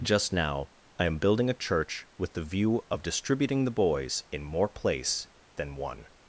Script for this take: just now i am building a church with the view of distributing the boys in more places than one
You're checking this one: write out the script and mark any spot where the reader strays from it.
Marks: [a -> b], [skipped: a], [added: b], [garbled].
just now i am building a church with the view of distributing the boys in more [places -> place] than one